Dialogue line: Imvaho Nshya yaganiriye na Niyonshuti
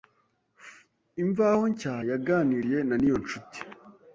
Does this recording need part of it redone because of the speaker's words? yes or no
no